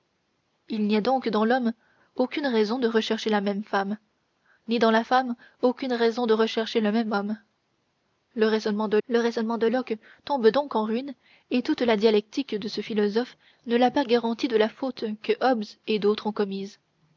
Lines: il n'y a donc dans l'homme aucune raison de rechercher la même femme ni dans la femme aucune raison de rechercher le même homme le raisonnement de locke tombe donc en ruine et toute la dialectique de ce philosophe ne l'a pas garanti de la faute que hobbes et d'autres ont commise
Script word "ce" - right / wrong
right